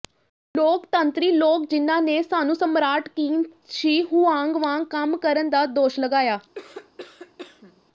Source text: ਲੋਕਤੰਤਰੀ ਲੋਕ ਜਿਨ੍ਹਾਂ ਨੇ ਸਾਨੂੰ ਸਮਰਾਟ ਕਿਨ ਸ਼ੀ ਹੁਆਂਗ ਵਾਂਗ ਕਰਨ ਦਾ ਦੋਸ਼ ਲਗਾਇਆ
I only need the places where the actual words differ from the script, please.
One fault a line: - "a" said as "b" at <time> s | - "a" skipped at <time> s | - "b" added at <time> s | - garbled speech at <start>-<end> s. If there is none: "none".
- "ਕੰਮ" added at 4.9 s